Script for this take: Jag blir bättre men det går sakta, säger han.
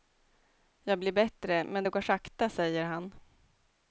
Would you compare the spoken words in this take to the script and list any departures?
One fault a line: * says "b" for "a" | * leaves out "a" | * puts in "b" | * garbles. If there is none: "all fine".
all fine